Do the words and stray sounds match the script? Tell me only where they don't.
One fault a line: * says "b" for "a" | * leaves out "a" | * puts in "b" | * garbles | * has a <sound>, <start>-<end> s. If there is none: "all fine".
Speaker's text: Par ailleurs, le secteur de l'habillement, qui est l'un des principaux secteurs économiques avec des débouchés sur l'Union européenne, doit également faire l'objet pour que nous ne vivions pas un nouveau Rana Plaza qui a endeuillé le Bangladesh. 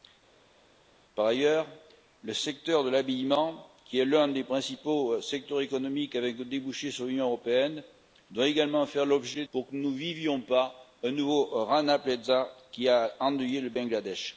all fine